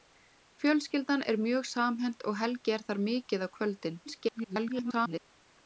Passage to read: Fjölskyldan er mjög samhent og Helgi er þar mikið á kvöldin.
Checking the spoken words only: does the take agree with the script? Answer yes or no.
no